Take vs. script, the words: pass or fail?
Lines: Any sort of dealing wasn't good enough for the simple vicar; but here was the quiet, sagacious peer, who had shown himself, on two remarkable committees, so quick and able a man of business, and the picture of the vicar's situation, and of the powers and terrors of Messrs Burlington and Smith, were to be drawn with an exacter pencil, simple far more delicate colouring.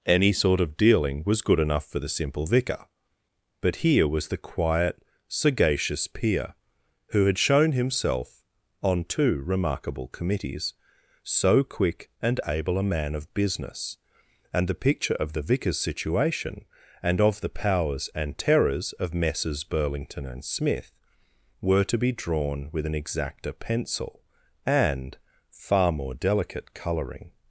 fail